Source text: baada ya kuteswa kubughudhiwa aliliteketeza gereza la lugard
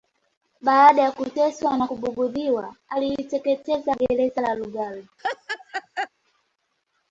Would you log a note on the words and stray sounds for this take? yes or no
yes